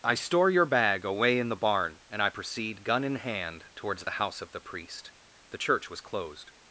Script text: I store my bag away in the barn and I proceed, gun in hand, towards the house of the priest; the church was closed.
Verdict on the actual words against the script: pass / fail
fail